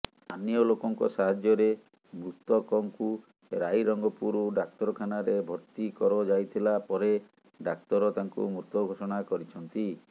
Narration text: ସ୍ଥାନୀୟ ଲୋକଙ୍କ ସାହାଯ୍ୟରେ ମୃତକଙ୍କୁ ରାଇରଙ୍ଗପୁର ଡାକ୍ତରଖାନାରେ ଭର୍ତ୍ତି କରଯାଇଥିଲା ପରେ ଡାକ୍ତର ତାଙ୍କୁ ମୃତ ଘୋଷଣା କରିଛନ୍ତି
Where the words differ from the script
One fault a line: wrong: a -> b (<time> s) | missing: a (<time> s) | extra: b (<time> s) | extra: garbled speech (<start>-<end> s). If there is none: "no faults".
no faults